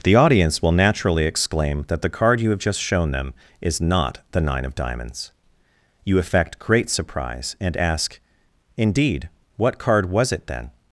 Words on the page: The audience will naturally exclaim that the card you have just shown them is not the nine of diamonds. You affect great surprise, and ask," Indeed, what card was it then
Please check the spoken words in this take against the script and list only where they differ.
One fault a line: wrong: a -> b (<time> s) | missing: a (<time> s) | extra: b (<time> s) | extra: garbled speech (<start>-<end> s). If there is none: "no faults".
no faults